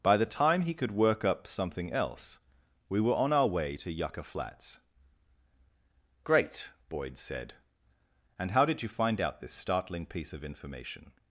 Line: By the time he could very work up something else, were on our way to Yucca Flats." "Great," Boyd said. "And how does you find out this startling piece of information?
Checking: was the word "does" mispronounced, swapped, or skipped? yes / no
yes